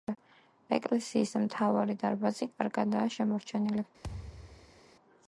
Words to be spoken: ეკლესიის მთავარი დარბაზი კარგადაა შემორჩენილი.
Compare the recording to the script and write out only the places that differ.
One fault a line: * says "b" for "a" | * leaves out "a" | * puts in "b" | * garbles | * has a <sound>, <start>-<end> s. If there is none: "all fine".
* has a thud, 4.0-4.8 s